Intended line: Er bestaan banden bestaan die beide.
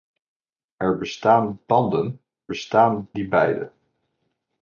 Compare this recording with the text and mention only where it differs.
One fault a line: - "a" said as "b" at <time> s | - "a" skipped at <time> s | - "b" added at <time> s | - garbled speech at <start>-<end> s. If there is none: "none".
none